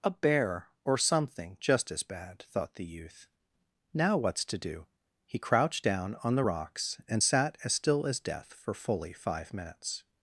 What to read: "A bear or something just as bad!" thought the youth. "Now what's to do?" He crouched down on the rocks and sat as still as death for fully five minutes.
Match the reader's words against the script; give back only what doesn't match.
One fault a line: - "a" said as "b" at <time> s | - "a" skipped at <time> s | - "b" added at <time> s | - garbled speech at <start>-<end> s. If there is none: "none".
none